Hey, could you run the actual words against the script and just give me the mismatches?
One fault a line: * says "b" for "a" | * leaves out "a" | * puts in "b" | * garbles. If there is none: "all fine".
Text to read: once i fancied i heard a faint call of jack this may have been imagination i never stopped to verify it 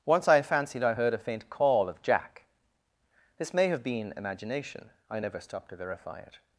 all fine